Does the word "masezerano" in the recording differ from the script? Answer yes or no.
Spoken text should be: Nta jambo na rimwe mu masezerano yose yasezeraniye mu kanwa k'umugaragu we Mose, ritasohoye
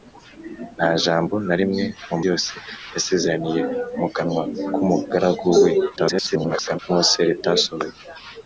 yes